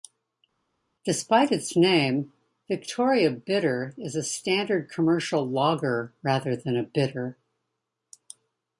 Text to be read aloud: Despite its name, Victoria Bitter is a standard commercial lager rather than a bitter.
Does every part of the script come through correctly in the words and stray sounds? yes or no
yes